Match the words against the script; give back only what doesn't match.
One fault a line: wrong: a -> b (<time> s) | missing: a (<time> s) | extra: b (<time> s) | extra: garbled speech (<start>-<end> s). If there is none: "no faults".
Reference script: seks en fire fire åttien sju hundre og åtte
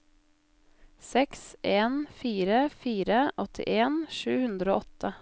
no faults